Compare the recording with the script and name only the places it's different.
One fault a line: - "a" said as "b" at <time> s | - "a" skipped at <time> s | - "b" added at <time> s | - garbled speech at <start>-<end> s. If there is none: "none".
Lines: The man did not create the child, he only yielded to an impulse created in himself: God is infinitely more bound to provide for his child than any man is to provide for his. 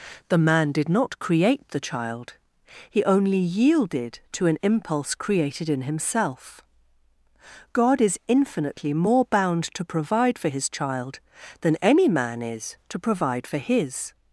none